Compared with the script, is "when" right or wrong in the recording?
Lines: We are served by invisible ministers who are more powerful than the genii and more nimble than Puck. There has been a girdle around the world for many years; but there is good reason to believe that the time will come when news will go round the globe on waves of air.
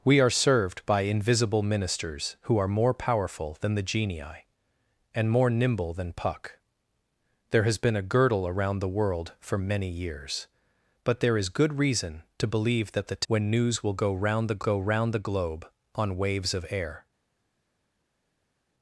wrong